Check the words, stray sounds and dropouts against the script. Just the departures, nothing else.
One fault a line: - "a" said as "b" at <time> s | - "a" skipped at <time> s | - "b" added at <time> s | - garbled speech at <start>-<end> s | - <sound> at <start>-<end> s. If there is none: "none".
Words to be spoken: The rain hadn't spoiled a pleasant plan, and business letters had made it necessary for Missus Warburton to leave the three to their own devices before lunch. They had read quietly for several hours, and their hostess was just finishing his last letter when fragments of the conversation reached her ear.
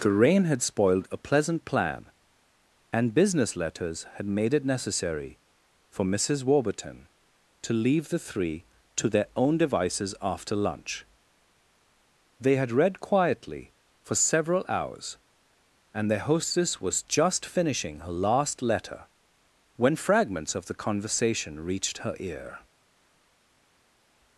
- "hadn't" said as "had" at 0.5 s
- "before" said as "after" at 10.2 s
- "his" said as "her" at 18.0 s